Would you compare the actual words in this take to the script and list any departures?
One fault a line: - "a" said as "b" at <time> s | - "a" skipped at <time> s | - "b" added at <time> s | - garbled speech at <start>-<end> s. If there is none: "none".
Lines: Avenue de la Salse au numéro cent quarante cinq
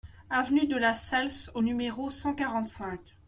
none